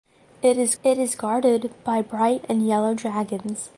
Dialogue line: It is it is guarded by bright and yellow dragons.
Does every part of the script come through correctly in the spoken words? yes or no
yes